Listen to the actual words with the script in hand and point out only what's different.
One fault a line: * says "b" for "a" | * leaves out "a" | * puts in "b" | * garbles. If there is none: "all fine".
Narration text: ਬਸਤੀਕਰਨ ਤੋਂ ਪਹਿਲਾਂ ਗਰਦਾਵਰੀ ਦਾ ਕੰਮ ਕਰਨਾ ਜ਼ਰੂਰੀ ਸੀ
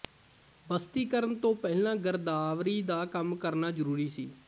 all fine